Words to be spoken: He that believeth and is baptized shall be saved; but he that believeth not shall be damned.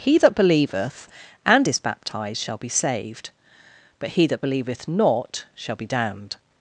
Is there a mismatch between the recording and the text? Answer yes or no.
no